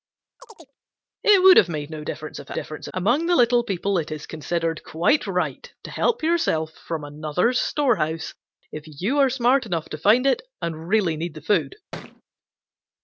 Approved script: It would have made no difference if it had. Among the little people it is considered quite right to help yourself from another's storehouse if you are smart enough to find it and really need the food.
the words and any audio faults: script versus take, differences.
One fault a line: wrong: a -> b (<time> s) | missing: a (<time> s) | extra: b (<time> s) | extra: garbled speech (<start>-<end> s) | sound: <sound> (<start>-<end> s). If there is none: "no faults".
sound: chirp (0.4-0.8 s)
wrong: had -> difference (2.5 s)
sound: thud (11.9-12.2 s)